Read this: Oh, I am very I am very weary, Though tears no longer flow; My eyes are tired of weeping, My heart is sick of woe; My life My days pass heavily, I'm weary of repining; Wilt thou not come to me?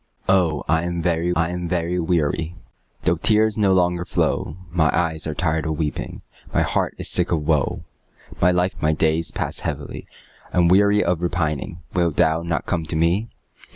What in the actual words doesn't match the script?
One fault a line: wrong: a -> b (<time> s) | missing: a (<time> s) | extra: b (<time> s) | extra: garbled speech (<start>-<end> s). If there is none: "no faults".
no faults